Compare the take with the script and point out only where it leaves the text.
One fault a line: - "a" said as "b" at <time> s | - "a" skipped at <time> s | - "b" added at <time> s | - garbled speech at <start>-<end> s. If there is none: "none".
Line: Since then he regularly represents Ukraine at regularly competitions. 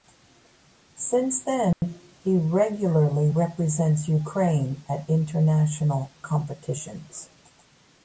- "regularly" said as "international" at 5.1 s